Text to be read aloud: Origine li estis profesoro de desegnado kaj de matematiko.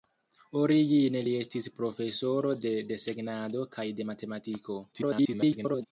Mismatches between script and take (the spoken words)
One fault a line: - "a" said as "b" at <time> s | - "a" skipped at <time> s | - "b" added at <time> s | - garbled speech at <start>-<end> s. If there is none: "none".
- garbled speech at 4.9-5.9 s